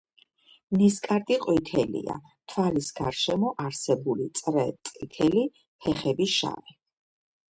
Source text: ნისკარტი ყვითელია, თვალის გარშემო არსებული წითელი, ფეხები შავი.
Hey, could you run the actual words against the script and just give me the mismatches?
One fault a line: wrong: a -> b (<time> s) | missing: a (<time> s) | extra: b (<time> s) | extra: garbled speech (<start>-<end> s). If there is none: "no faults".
extra: წრე (4.4 s)